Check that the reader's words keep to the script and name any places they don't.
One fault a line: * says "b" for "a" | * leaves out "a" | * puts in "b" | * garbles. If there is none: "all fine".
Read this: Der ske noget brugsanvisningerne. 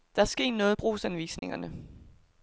all fine